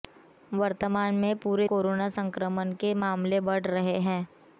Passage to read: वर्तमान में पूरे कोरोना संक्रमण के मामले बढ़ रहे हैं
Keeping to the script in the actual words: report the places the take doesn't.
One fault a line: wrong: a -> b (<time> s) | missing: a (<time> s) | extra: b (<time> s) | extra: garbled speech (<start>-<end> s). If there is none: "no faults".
no faults